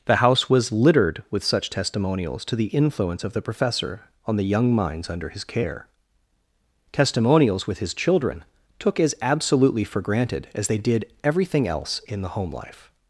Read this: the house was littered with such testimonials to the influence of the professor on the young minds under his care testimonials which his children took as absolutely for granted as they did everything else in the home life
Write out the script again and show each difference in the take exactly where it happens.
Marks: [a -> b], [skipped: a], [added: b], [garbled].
the house was littered with such testimonials to the influence of the professor on the young minds under his care testimonials [which -> with] his children took as absolutely for granted as they did everything else in the home life